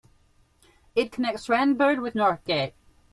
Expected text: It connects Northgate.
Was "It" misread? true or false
false